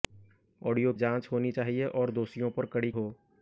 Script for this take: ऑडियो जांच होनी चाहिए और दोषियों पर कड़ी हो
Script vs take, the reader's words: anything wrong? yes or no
no